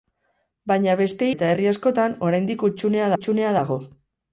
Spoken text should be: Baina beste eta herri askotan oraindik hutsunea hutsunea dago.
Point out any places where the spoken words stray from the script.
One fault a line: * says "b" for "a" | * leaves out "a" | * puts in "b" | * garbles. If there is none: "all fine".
all fine